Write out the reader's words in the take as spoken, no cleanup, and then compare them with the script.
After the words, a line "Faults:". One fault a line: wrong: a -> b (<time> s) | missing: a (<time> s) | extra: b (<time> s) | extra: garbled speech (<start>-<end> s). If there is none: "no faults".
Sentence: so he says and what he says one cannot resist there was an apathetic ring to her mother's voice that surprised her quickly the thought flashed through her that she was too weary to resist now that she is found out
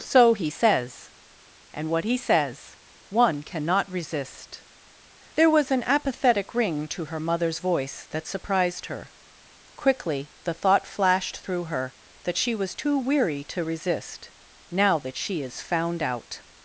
so he says and what he says one cannot resist there was an apathetic ring to her mother's voice that surprised her quickly the thought flashed through her that she was too weary to resist now that she is found out
Faults:
no faults